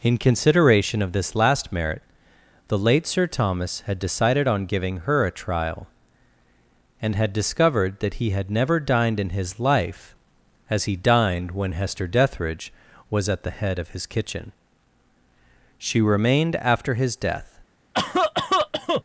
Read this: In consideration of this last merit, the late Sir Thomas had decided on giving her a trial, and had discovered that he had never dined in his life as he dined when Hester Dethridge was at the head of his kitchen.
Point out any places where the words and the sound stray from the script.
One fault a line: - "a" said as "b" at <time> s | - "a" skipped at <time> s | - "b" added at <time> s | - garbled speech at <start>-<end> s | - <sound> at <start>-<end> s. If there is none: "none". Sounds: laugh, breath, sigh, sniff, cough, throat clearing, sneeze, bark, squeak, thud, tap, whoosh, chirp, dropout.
- "She remained after his death" added at 15.8 s
- cough at 17.9-19.0 s